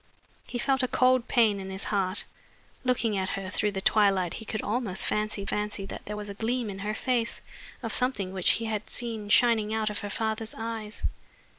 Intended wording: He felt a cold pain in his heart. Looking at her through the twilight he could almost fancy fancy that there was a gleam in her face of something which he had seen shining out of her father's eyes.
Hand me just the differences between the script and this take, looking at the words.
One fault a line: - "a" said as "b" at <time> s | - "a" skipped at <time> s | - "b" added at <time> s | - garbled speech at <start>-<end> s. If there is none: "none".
none